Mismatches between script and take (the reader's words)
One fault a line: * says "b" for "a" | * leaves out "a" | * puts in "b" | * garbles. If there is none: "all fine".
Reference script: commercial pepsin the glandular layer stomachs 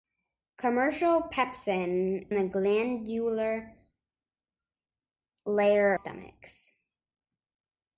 all fine